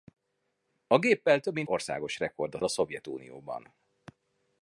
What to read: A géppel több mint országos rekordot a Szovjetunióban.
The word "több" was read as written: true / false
true